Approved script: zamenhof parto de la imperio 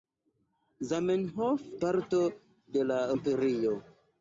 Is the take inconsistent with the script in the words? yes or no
no